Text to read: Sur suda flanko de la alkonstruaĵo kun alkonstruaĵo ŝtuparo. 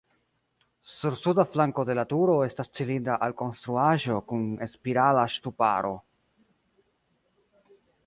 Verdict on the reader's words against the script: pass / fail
fail